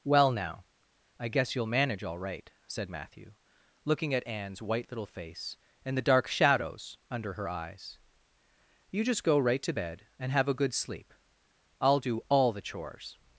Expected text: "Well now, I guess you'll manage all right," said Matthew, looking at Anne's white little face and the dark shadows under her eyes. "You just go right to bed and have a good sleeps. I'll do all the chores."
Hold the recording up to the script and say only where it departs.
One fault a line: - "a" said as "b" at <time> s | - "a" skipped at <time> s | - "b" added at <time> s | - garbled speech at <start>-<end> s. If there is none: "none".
- "sleeps" said as "sleep" at 10.7 s